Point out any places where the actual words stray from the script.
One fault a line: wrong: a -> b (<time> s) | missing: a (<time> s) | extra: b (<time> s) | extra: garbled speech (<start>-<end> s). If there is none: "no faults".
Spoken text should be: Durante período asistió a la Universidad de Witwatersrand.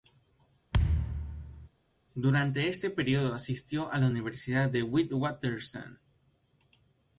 extra: este (2.7 s)